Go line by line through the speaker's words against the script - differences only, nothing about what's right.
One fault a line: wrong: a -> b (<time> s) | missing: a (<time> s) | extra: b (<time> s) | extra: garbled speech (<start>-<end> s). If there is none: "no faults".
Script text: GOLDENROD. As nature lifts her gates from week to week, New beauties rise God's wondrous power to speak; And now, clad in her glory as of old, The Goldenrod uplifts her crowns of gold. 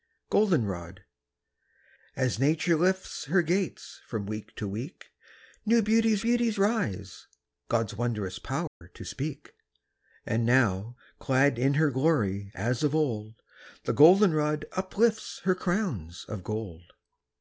extra: beauties (6.2 s)